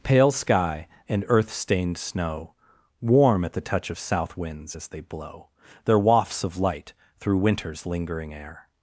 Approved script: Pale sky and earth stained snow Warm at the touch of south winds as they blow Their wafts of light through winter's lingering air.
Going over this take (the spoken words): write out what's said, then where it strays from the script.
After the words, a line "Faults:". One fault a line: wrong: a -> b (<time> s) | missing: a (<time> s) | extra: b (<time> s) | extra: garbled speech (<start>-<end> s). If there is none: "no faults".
Pale sky and earth stained snow Warm at the touch of south winds as they blow Their wafts of light through winter's lingering air.
Faults:
no faults